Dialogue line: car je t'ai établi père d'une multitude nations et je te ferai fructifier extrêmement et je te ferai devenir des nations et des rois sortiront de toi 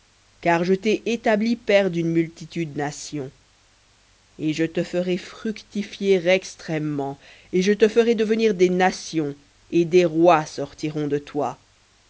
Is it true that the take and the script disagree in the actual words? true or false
false